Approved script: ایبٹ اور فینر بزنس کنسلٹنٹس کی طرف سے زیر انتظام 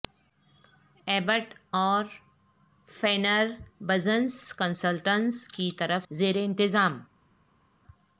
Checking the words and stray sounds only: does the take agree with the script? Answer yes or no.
no